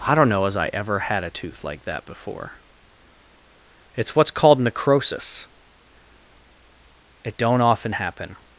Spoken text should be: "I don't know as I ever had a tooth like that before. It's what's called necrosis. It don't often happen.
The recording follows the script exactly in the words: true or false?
true